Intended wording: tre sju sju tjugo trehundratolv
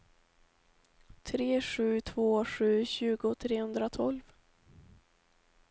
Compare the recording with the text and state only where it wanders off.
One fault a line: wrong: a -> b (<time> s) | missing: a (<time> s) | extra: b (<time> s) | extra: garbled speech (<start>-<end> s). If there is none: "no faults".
extra: två (2.0 s)